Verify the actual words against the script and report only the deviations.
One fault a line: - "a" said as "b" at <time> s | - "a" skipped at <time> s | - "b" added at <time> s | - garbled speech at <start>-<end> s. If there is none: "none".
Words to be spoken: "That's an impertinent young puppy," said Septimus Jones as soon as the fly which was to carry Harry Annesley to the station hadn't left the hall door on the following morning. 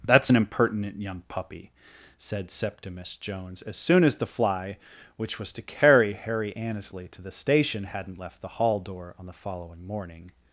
none